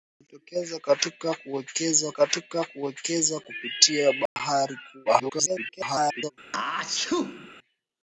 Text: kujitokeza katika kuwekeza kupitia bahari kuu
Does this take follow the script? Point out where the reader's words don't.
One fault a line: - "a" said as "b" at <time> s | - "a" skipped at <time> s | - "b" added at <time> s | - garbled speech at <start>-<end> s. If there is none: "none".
- "katika kuwekeza" added at 2.1 s
- garbled speech at 5.1-6.3 s